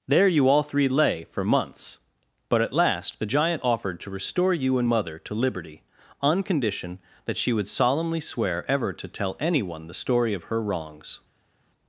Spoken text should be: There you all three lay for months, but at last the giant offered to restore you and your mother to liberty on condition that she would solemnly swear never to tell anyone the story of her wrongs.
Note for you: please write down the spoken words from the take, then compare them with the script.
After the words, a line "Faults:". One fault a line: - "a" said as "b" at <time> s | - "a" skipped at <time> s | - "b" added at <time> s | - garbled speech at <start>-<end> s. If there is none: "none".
There you all three lay for months, but at last the giant offered to restore you and mother to liberty on condition that she would solemnly swear ever to tell anyone the story of her wrongs.
Faults:
- "your" skipped at 4.9 s
- "never" said as "ever" at 8.7 s